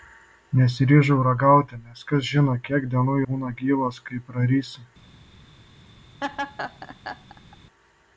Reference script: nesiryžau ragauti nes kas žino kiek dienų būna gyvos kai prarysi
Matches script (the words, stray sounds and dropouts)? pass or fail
fail